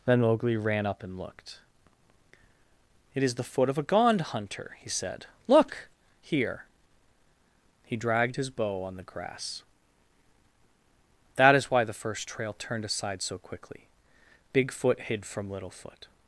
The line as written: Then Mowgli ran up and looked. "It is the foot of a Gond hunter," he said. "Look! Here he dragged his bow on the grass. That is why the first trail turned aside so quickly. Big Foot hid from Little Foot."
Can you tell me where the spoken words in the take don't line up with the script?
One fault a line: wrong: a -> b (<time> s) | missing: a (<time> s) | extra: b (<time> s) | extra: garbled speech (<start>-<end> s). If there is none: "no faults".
no faults